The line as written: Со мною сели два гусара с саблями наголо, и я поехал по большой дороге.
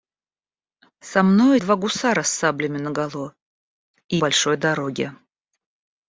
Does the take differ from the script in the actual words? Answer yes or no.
yes